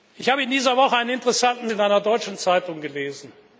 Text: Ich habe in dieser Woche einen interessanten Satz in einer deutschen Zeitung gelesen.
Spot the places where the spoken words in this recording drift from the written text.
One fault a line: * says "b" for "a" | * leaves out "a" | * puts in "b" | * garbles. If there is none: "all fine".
* leaves out "Satz"